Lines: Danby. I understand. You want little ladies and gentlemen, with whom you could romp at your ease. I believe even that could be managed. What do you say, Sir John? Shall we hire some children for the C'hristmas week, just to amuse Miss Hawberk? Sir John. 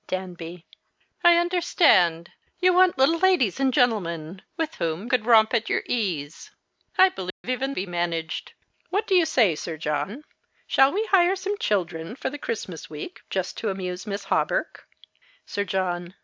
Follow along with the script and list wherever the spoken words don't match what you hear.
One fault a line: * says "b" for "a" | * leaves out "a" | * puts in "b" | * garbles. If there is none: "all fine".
* leaves out "you"
* leaves out "that could"